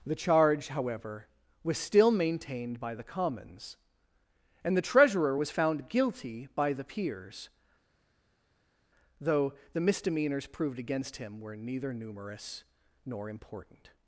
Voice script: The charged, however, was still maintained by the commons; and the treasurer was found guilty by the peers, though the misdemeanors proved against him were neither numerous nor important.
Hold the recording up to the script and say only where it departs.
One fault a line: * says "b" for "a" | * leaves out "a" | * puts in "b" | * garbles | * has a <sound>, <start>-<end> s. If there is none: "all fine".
* says "charge" for "charged"